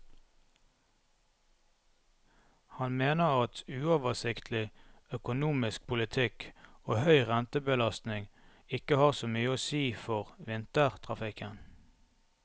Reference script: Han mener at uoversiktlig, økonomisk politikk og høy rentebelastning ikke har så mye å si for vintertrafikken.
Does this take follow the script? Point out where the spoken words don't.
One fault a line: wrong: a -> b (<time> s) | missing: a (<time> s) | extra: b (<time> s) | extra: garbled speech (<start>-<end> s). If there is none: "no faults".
no faults